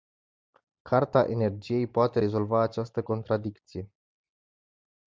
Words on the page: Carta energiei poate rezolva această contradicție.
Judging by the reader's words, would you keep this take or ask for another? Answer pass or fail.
pass